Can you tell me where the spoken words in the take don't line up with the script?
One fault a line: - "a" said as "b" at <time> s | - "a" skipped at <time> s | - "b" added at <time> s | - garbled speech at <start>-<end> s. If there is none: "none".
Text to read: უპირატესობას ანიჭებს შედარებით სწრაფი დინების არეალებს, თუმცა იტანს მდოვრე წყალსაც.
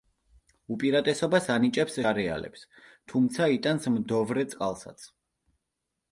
- "შედარებით სწრაფი დინების" skipped at 2.0 s